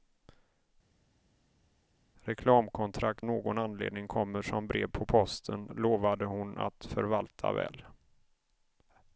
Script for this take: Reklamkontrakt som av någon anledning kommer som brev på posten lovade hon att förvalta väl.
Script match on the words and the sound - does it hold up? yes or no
no